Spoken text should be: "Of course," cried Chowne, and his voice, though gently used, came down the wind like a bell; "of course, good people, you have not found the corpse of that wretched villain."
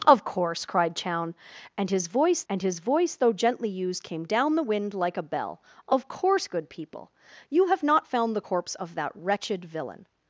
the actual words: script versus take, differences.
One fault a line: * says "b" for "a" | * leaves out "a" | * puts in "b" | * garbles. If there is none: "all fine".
* puts in "and his voice"